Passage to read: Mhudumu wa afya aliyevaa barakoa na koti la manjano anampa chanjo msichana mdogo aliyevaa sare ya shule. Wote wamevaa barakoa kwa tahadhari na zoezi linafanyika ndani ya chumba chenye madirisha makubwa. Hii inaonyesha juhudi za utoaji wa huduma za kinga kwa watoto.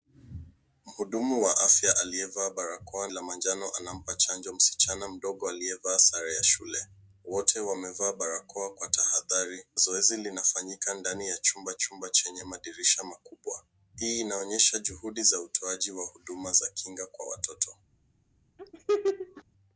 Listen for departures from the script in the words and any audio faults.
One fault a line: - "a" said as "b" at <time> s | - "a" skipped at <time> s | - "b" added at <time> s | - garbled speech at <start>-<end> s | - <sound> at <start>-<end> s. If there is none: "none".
- "na koti" skipped at 3.1 s
- "na" skipped at 9.7 s
- "chumba" added at 11.7 s
- laugh at 18.6-19.4 s